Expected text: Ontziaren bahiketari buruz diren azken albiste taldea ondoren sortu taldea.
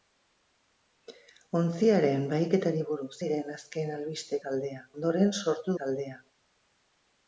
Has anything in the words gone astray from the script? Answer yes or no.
no